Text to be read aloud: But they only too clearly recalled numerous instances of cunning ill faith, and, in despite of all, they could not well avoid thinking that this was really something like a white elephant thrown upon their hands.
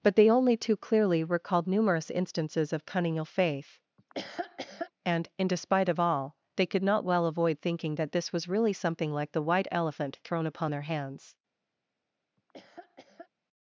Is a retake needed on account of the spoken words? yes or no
yes